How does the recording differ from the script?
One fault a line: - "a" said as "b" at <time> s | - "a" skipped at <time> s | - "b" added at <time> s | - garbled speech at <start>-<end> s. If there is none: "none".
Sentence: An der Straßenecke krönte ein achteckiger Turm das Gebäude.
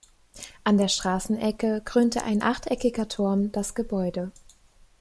none